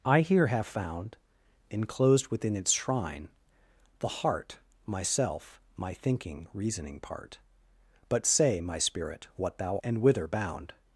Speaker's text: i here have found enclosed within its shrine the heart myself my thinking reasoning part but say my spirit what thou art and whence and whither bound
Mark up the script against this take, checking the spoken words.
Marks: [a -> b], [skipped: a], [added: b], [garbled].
i here have found enclosed within its shrine the heart myself my thinking reasoning part but say my spirit what thou [skipped: art and whence] and whither bound